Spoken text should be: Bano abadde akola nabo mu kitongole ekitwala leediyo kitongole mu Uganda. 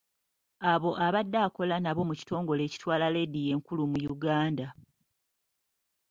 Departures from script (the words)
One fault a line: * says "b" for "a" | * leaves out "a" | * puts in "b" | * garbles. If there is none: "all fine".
* says "Abo" for "Bano"
* says "enkulu" for "kitongole"